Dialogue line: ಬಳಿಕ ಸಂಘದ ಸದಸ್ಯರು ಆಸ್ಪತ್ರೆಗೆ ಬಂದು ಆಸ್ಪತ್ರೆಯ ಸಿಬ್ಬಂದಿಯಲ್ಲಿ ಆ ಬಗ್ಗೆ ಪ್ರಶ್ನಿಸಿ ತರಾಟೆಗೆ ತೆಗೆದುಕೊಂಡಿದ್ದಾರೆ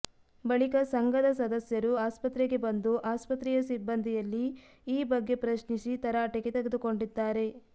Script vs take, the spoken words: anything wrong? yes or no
yes